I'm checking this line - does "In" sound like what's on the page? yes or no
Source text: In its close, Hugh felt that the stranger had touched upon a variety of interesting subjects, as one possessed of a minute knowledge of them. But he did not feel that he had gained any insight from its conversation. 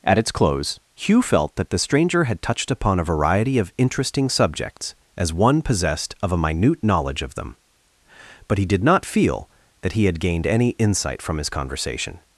no